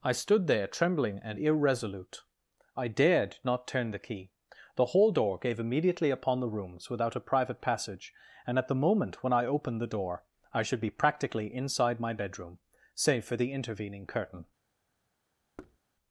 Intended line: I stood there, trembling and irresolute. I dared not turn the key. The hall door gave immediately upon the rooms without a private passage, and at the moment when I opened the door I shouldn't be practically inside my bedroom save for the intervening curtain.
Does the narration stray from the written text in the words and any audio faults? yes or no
yes